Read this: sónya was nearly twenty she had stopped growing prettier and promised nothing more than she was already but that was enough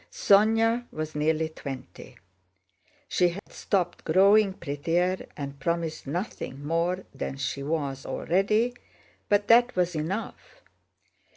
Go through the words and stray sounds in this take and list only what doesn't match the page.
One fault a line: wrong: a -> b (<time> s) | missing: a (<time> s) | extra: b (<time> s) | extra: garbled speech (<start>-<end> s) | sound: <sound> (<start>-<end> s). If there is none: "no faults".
sound: dropout (3.4-3.5 s)